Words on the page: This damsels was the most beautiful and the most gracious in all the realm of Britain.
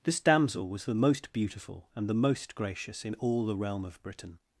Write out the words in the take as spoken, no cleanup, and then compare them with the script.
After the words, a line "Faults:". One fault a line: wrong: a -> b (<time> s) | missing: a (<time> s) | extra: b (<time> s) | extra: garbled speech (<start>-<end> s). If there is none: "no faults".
This damsel was the most beautiful and the most gracious in all the realm of Britain.
Faults:
wrong: damsels -> damsel (0.2 s)